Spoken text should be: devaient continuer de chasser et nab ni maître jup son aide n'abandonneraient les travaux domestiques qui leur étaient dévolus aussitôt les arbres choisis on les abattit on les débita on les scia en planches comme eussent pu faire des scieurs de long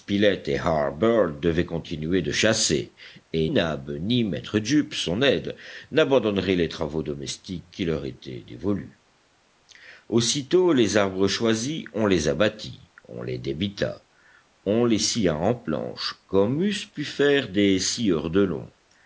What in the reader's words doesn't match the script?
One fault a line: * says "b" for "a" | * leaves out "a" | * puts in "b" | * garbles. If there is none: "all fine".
all fine